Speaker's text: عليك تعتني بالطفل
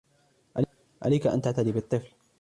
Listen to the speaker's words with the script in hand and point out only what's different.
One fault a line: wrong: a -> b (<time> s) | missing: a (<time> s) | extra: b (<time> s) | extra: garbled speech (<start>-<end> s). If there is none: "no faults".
extra: أن (1.3 s)